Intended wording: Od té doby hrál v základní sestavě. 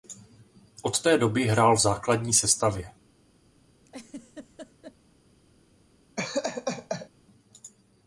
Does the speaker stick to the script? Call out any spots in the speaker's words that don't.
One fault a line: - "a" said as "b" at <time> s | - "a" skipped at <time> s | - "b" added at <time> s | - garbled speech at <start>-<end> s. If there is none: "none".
none